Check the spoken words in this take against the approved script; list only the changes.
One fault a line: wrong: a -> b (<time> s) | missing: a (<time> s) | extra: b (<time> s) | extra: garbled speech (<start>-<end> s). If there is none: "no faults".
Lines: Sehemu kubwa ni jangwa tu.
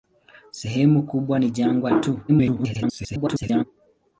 extra: garbled speech (2.3-3.6 s)